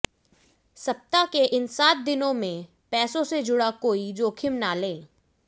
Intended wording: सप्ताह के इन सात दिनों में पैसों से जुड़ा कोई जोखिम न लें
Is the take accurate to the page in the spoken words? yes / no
yes